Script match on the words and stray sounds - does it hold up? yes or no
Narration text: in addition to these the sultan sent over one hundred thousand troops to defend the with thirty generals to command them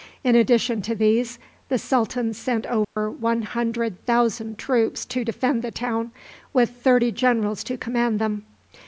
no